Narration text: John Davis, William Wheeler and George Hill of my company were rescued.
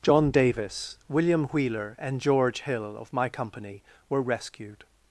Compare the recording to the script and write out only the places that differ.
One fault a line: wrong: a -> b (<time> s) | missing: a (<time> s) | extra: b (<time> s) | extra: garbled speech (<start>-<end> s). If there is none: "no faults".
no faults